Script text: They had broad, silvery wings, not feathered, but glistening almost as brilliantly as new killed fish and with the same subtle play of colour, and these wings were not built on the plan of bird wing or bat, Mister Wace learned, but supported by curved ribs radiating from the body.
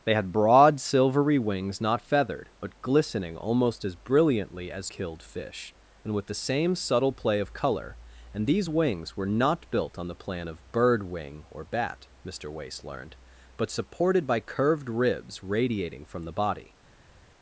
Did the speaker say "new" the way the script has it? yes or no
no